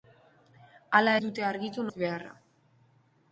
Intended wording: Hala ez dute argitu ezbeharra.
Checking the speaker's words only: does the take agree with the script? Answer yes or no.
yes